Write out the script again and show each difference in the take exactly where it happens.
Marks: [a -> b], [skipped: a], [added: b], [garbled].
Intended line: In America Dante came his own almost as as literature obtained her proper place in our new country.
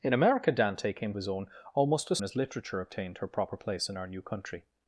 In America Dante came his own almost as as literature obtained her proper place in our new country.